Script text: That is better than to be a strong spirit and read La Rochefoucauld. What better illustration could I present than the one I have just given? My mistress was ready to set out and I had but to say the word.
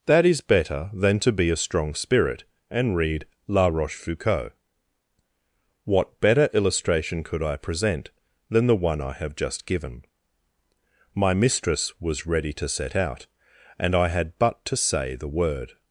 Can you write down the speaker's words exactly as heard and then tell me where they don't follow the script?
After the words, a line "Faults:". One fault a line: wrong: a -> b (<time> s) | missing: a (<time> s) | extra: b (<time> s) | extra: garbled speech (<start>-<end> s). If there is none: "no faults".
That is better than to be a strong spirit and read La Rochefoucauld. What better illustration could I present than the one I have just given? My mistress was ready to set out and I had but to say the word.
Faults:
no faults